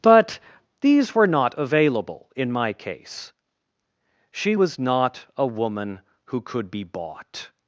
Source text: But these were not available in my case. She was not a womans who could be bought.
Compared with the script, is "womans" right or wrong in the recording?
wrong